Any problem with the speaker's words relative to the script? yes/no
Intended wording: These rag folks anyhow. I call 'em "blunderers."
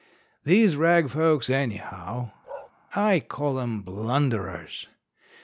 no